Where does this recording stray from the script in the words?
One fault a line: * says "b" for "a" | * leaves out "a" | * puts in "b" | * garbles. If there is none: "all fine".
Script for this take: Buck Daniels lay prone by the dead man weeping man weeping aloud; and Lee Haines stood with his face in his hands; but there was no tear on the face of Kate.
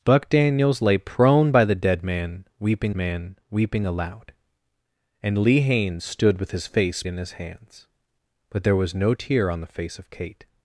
all fine